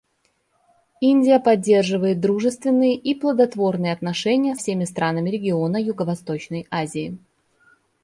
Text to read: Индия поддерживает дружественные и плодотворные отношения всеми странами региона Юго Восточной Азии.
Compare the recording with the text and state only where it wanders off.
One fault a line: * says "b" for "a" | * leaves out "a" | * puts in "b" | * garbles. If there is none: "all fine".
all fine